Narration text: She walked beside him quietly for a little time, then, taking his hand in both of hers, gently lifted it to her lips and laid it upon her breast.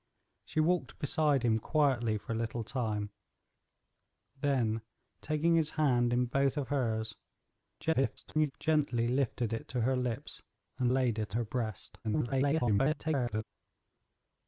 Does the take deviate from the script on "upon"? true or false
true